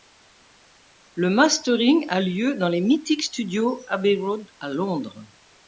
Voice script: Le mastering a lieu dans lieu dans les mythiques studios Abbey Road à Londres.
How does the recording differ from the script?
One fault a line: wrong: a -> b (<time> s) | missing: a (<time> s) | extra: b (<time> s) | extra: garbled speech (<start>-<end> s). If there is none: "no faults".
missing: lieu dans (2.7 s)